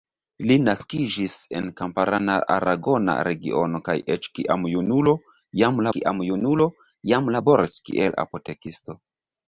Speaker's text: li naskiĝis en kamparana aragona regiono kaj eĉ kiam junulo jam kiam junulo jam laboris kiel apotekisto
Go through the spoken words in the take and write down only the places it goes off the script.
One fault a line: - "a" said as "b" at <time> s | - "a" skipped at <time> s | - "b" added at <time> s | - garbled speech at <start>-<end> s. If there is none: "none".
none